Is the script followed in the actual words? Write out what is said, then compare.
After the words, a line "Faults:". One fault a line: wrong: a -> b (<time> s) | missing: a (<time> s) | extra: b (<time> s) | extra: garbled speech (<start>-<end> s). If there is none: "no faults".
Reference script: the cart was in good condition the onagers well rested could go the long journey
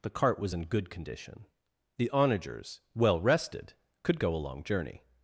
the cart was in good condition the onagers well rested could go a long journey
Faults:
wrong: the -> a (4.3 s)